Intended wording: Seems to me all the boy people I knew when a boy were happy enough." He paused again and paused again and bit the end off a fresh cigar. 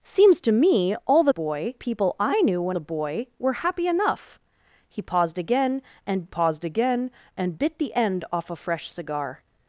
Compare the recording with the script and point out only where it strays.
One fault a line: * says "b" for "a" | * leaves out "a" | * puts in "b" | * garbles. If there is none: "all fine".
all fine